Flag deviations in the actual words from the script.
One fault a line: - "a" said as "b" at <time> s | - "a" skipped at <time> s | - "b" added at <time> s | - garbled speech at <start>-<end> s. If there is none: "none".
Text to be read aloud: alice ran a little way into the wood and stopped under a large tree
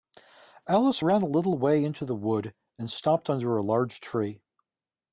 none